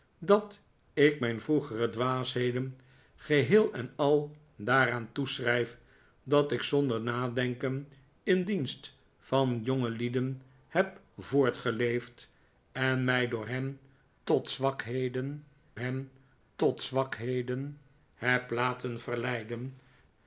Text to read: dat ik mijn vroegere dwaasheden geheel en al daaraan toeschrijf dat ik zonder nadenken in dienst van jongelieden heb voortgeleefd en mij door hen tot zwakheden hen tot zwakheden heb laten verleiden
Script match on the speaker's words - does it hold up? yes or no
yes